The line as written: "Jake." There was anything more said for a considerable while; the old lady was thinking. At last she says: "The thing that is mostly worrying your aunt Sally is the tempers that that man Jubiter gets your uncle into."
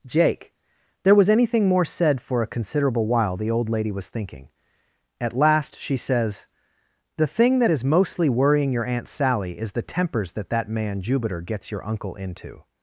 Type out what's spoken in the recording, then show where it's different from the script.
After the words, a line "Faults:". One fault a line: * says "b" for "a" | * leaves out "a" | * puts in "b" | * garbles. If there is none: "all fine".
"Jake." There was anything more said for a considerable while; the old lady was thinking. At last she says: "The thing that is mostly worrying your aunt Sally is the tempers that that man Jubiter gets your uncle into."
Faults:
all fine